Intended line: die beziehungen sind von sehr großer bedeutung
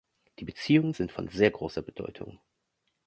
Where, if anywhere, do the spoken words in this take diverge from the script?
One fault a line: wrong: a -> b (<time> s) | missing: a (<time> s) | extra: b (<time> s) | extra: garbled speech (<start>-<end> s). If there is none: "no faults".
no faults